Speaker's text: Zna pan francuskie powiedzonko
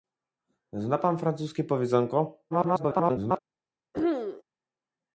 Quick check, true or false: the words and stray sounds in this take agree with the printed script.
false